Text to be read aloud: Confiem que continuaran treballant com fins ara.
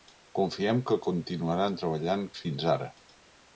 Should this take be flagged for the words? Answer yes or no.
yes